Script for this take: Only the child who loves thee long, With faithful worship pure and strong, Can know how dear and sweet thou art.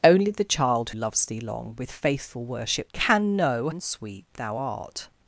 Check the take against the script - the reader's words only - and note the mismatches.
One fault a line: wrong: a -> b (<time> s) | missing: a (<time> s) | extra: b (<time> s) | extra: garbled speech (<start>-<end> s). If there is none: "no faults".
missing: who (0.9 s)
missing: pure and strong (2.9 s)
missing: how dear (3.7 s)